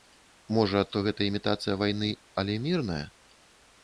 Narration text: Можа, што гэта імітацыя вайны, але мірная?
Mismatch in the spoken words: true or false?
false